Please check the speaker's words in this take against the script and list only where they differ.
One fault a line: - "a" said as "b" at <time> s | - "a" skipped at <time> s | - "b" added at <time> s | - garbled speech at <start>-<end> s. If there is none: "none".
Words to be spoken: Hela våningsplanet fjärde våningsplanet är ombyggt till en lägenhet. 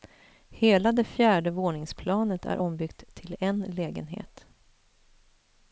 - "våningsplanet" said as "det" at 0.9 s